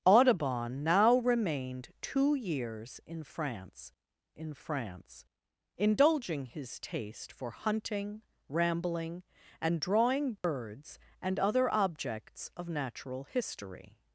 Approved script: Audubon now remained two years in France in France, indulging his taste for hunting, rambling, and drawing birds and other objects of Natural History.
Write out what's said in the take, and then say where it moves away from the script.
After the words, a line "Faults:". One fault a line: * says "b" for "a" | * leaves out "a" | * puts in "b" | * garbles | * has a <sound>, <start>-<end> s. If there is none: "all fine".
Audubon now remained two years in France in France, indulging his taste for hunting, rambling, and drawing birds and other objects of Natural History.
Faults:
* has a dropout, 10.4-10.4 s